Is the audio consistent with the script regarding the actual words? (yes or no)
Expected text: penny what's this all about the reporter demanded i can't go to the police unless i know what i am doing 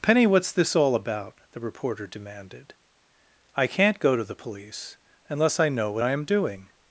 yes